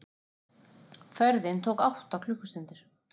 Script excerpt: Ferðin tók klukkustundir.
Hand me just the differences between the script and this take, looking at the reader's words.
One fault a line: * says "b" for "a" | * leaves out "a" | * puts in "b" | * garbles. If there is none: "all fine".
* puts in "átta"